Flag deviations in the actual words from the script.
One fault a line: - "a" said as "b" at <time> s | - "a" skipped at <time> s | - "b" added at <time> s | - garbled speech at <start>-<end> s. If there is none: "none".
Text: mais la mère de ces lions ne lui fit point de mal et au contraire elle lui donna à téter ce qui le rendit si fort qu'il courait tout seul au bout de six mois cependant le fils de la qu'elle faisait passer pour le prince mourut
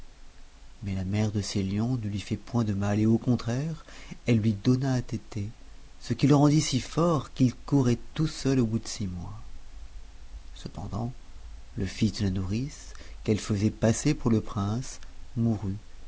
- "nourrice" added at 12.3 s